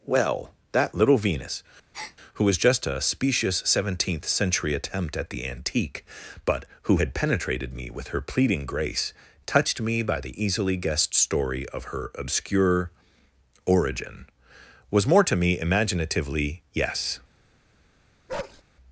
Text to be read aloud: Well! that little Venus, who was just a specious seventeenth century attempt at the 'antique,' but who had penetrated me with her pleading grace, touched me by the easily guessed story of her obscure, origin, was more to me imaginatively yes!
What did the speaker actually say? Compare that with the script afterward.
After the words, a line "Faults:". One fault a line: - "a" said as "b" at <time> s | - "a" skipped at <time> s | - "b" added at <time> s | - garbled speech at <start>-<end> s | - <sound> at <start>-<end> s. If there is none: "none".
Well! that little Venus, who was just a specious seventeenth century attempt at the 'antique,' but who had penetrated me with her pleading grace, touched me by the easily guessed story of her obscure, origin, was more to me imaginatively yes!
Faults:
- breath at 1.9-2.2 s
- bark at 18.3-18.6 s